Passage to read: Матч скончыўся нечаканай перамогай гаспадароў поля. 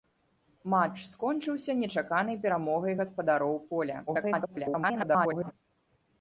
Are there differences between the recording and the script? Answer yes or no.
yes